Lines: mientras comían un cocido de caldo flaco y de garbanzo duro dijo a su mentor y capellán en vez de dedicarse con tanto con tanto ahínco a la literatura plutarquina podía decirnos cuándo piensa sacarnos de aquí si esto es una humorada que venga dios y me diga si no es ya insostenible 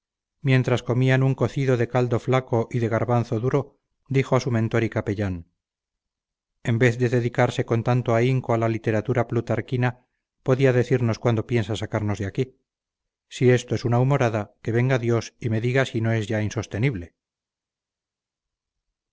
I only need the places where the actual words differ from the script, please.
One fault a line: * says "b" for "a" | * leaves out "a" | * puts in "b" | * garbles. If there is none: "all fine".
* leaves out "con tanto"